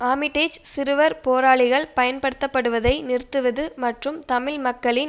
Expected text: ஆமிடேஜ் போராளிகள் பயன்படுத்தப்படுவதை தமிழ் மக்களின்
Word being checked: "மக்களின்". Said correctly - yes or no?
yes